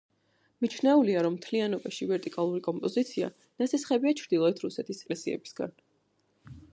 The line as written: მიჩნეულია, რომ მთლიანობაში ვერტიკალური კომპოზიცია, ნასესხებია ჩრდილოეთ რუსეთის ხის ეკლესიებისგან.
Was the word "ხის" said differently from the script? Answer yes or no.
yes